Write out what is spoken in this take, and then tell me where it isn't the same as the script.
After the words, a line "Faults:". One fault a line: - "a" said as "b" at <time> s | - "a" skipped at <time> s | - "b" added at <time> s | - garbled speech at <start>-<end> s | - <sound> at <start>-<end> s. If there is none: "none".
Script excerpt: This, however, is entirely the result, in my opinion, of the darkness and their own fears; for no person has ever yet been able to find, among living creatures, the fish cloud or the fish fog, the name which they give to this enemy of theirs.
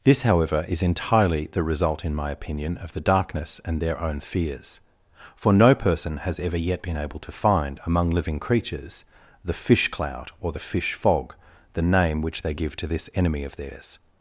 This, however, is entirely the result, in my opinion, of the darkness and their own fears; for no person has ever yet been able to find, among living creatures, the fish cloud or the fish fog, the name which they give to this enemy of theirs.
Faults:
none